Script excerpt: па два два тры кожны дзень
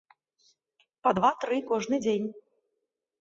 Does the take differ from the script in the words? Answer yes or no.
yes